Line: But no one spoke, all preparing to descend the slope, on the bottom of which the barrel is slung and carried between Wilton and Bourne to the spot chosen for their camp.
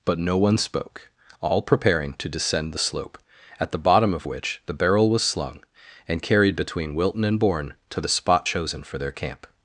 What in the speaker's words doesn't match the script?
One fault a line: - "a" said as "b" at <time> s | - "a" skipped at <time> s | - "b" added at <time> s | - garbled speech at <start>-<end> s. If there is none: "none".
- "on" said as "at" at 3.6 s
- "is" said as "was" at 5.1 s